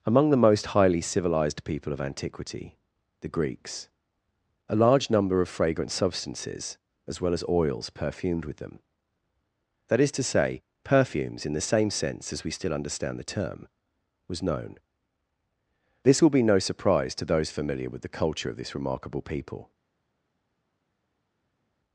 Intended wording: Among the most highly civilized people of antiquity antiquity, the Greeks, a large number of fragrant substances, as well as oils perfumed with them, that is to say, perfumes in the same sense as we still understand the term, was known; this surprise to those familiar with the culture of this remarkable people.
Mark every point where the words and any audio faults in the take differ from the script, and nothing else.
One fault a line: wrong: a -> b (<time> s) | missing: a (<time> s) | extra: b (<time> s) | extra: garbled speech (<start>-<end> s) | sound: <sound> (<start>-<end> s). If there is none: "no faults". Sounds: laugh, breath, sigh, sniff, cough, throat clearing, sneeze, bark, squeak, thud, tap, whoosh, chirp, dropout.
missing: antiquity (2.8 s)
extra: will be no (16.2 s)